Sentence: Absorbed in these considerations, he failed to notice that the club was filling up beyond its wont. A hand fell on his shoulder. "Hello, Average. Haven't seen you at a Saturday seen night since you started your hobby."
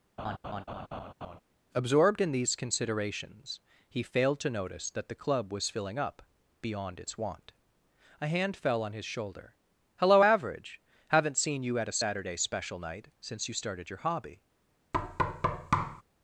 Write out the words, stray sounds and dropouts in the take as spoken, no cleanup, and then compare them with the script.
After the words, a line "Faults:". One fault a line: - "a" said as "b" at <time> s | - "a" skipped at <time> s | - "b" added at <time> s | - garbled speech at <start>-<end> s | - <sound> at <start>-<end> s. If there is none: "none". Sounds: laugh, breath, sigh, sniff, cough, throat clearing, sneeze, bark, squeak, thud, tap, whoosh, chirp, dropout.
Absorbed in these considerations, he failed to notice that the club was filling up beyond its wont. A hand fell on his shoulder. "Hello, Average. Haven't seen you at a Saturday special night since you started your hobby."
Faults:
- laugh at 0.2-1.4 s
- "seen" said as "special" at 12.4 s
- thud at 14.9-16.0 s